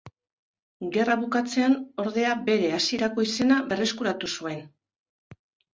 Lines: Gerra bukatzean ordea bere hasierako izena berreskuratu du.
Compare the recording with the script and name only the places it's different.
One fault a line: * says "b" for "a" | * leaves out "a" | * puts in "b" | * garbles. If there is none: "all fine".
* says "zuen" for "du"